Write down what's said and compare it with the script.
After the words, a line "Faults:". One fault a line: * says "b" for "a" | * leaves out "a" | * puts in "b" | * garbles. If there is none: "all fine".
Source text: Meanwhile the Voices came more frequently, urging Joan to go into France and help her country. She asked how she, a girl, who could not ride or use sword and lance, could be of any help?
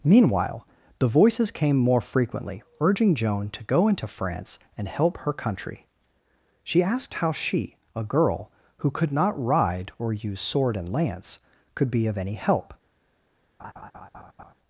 Meanwhile the Voices came more frequently, urging Joan to go into France and help her country. She asked how she, a girl, who could not ride or use sword and lance, could be of any help?
Faults:
all fine